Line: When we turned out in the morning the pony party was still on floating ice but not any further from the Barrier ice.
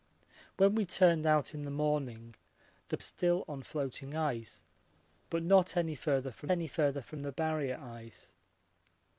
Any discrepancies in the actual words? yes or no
yes